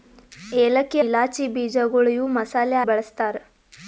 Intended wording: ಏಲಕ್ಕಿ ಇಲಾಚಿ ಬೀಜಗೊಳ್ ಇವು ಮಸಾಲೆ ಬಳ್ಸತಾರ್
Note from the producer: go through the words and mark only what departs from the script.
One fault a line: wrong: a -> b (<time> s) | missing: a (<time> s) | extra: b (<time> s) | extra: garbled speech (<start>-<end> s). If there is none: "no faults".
no faults